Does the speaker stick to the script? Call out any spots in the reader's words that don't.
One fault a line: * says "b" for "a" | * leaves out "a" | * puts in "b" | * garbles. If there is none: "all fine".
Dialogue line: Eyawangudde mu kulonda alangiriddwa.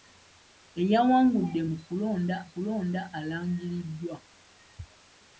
* puts in "kulonda"